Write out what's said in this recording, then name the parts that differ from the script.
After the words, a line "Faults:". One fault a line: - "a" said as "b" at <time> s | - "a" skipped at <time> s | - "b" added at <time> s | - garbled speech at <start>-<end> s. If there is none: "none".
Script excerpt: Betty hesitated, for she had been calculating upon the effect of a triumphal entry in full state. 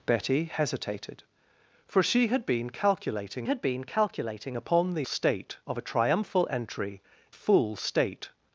Betty hesitated, for she had been calculating had been calculating upon the state of a triumphal entry full state.
Faults:
- "had been calculating" added at 3.4 s
- "effect" said as "state" at 5.0 s
- "in" skipped at 7.0 s